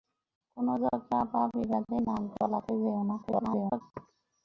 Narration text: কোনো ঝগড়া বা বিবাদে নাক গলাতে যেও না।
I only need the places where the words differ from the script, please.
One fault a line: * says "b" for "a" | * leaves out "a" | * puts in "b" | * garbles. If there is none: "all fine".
* garbles